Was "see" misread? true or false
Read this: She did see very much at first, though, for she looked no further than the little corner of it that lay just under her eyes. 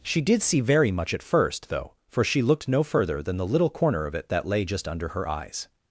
false